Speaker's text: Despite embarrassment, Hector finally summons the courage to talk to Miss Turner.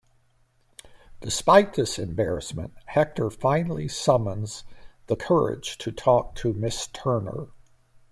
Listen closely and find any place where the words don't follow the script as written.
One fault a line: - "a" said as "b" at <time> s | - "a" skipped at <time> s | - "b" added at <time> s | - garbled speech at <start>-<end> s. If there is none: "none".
- "this" added at 1.8 s